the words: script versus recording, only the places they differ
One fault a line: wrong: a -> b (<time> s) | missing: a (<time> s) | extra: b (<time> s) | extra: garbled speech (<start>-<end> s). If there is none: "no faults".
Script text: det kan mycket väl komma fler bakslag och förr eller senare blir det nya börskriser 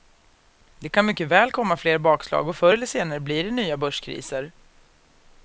no faults